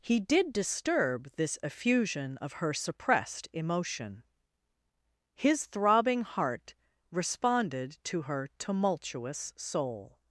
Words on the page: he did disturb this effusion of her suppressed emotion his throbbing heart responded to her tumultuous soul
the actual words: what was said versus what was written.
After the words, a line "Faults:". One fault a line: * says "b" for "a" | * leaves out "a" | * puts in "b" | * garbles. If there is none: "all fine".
he did disturb this effusion of her suppressed emotion his throbbing heart responded to her tumultuous soul
Faults:
all fine